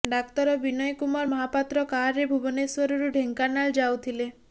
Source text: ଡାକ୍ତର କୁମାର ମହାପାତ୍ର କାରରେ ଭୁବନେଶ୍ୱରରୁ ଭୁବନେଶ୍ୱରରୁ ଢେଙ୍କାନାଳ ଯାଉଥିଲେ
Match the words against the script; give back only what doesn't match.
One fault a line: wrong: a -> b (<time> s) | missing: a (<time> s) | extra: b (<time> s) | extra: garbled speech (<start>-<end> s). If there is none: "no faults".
extra: ବିନୟ (0.6 s)
missing: ଭୁବନେଶ୍ୱରରୁ (3.1 s)